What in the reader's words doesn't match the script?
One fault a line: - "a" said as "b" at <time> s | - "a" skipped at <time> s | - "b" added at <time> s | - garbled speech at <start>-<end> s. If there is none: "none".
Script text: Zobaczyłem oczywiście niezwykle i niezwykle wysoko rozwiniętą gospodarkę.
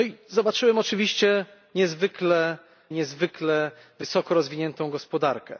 none